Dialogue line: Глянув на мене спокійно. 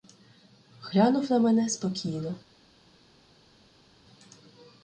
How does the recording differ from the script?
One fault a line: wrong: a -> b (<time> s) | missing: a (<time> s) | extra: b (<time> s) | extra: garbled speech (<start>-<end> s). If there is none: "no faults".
no faults